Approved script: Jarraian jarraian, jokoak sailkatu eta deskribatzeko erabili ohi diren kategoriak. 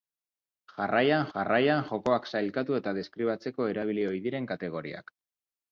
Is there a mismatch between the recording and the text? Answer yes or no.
no